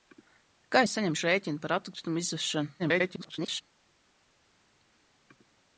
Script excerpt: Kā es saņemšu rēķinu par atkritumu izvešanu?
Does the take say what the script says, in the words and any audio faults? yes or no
no